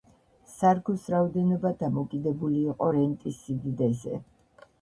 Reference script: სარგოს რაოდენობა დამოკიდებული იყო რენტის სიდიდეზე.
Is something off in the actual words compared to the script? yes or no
no